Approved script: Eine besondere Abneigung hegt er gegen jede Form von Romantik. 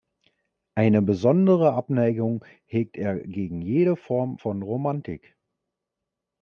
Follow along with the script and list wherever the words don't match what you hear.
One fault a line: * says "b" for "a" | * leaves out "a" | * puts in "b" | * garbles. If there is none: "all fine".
all fine